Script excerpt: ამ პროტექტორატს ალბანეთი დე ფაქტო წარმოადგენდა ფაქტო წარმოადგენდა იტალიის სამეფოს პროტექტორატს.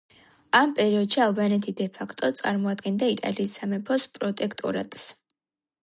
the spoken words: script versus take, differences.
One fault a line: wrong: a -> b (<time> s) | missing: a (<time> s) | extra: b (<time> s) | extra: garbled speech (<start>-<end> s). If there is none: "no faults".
wrong: პროტექტორატს -> პერიოდში (0.8 s)
missing: ფაქტო წარმოადგენდა (3.1 s)